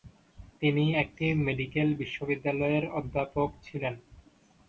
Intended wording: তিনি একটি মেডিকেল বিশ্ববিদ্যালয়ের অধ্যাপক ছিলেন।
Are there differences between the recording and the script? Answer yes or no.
no